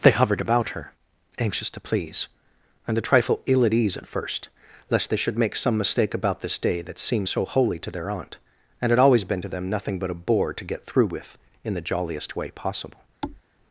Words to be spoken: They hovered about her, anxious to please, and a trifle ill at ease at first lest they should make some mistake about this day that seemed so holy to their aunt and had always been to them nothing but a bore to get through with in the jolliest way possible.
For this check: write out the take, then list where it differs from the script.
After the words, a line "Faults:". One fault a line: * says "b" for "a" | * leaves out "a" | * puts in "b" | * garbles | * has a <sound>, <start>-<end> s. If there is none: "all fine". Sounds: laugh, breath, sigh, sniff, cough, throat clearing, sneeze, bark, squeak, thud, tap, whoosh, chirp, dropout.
They hovered about her, anxious to please, and a trifle ill at ease at first lest they should make some mistake about this day that seemed so holy to their aunt and had always been to them nothing but a bore to get through with in the jolliest way possible.
Faults:
* has a thud, 13.2-13.4 s